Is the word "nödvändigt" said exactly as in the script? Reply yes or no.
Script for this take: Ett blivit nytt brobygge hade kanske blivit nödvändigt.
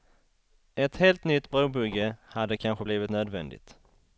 yes